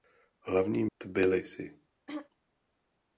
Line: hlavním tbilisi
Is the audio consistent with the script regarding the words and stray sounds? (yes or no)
no